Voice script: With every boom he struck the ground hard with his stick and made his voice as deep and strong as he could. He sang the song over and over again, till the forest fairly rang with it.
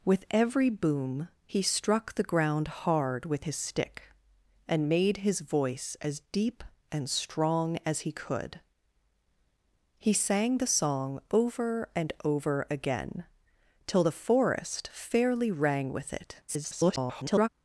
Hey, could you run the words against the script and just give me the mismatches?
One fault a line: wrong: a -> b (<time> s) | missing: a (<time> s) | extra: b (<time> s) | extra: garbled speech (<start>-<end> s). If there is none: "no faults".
extra: garbled speech (16.5-17.5 s)